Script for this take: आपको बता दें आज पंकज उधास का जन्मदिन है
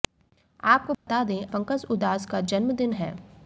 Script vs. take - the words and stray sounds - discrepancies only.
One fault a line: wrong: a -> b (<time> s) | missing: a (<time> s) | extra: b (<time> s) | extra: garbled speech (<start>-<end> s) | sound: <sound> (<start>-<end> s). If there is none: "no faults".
sound: dropout (0.9-1.1 s)
missing: आज (1.5 s)